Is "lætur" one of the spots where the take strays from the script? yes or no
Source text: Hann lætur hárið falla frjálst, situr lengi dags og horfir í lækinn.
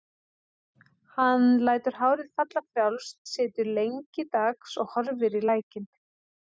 no